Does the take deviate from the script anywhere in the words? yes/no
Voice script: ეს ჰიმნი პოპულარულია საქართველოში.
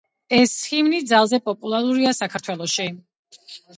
yes